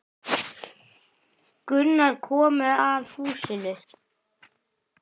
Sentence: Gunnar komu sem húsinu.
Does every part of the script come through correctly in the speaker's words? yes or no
no